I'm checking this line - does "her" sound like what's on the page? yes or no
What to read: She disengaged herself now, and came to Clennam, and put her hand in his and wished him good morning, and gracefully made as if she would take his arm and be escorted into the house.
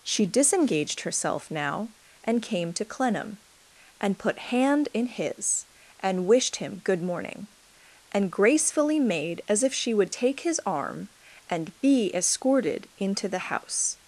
no